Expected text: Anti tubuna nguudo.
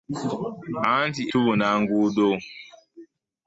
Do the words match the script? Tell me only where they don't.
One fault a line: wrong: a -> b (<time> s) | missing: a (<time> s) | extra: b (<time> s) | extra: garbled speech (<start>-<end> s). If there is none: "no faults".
no faults